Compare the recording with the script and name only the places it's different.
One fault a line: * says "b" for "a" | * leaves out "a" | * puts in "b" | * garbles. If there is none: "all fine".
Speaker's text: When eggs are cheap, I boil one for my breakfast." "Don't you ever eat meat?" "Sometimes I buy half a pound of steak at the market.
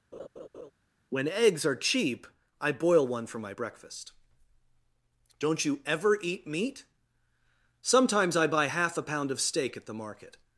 all fine